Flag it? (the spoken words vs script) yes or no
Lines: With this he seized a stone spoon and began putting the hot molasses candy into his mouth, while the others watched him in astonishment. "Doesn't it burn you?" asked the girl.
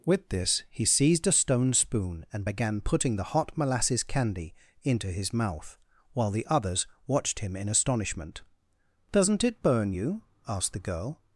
no